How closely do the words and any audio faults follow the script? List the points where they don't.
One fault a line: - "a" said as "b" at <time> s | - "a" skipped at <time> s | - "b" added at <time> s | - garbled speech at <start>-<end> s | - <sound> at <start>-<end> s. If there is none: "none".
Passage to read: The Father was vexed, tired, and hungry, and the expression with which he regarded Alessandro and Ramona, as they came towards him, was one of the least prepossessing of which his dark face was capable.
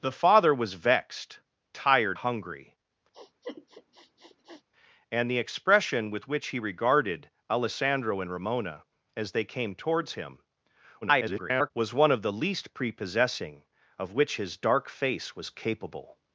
- "and" skipped at 2.2 s
- sniff at 3.1-4.6 s
- garbled speech at 11.0-11.7 s